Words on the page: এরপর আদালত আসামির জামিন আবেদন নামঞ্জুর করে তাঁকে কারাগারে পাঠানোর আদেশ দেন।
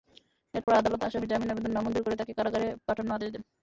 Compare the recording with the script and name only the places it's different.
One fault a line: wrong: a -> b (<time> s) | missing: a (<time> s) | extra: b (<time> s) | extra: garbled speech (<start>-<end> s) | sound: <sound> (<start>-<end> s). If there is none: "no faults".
sound: dropout (0.6-0.7 s)